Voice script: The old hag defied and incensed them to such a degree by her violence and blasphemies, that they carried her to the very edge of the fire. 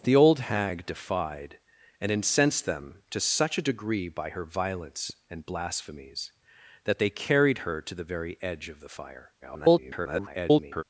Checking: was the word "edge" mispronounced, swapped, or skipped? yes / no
no